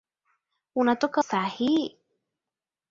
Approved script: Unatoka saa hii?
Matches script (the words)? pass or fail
pass